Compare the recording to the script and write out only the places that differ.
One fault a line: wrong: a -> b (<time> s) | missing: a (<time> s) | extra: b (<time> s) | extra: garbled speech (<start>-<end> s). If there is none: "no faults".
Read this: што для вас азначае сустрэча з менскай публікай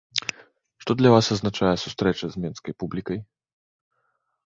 no faults